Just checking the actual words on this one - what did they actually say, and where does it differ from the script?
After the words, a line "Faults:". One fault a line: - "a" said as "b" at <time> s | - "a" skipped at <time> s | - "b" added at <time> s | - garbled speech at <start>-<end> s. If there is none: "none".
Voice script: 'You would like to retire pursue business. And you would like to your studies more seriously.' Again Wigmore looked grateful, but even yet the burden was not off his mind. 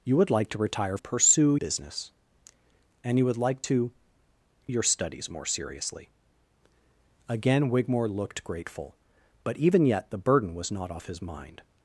'You would like to retire pursue business. And you would like to your studies more seriously.' Again Wigmore looked grateful, but even yet the burden was not off his mind.
Faults:
none